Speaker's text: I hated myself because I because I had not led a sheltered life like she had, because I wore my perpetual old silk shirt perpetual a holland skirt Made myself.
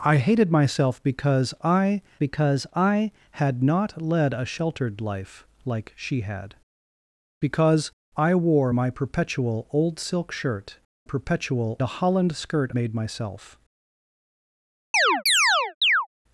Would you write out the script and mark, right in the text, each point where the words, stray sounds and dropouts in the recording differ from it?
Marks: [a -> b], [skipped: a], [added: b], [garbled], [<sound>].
I hated myself because I because I had not led a sheltered life like she had, because I wore my perpetual old silk shirt perpetual a holland skirt Made myself. [chirp]